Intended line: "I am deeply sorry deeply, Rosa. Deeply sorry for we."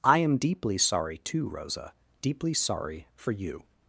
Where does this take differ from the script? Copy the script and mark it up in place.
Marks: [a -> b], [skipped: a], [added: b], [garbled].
"I am deeply sorry [deeply, -> too] Rosa. Deeply sorry for [we." -> you]